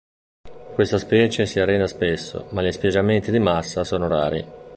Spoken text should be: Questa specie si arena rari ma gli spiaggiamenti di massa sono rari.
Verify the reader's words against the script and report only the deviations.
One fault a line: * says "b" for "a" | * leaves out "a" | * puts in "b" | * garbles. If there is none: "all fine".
* says "spesso" for "rari"